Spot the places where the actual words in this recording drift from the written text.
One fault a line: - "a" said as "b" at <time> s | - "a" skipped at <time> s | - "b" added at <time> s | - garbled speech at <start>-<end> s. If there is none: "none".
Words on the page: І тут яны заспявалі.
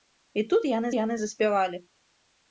- "яны" added at 1.0 s